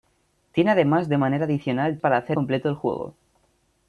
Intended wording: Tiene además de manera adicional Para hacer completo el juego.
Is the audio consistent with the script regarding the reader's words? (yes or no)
yes